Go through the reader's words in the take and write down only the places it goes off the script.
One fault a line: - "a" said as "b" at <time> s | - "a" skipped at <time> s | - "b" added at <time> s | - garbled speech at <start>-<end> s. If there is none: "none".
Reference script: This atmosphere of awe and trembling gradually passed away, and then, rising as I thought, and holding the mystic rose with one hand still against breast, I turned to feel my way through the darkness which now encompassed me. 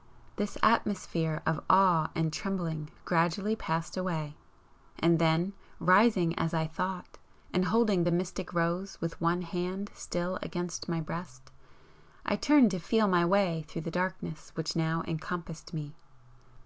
- "my" added at 10.9 s